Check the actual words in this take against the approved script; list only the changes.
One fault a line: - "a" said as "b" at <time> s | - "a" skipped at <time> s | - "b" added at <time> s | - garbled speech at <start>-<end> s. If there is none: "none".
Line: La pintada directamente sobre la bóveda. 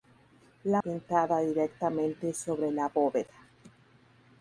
none